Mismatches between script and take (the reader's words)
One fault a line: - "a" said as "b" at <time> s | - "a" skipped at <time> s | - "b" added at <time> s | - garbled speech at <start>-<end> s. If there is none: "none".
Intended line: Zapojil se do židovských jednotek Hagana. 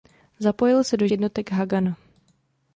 - "židovských" skipped at 1.1 s